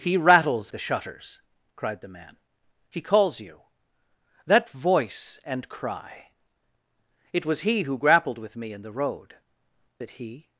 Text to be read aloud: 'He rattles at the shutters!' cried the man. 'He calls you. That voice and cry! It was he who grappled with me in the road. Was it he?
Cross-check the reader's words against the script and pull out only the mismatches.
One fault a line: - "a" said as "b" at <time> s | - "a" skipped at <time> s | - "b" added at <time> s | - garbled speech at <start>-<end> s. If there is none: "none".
- "at" skipped at 0.7 s
- "Was" skipped at 9.4 s